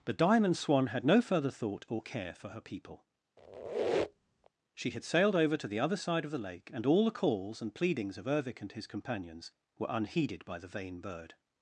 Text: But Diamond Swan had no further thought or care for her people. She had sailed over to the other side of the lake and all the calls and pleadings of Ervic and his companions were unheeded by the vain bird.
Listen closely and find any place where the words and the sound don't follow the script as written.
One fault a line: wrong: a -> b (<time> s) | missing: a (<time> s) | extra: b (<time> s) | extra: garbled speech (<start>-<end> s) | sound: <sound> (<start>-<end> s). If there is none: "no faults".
sound: squeak (3.4-4.5 s)